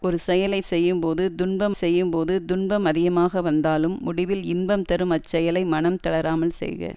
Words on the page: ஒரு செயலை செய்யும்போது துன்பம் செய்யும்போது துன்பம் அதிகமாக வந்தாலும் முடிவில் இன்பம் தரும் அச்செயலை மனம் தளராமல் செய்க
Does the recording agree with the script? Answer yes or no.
yes